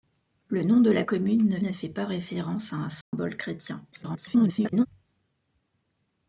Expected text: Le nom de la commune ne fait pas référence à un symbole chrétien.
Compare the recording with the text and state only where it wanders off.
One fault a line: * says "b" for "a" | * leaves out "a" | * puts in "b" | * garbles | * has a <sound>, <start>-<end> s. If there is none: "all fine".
* puts in "ne"
* has a dropout, 3.0-3.1 s
* garbles